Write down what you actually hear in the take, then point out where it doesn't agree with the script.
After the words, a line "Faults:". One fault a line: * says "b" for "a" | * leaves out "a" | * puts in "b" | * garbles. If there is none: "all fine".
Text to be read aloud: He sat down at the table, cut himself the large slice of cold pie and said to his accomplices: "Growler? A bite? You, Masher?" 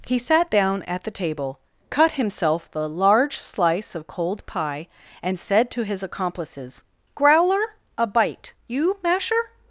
He sat down at the table, cut himself the large slice of cold pie and said to his accomplices: "Growler? A bite? You, Masher?"
Faults:
all fine